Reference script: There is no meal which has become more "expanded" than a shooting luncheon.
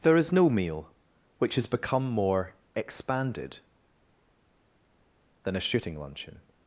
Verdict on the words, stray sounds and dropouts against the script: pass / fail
pass